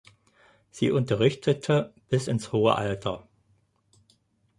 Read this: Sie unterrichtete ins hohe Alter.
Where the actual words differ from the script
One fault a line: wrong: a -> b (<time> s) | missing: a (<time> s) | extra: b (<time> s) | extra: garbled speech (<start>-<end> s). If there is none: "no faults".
extra: bis (2.1 s)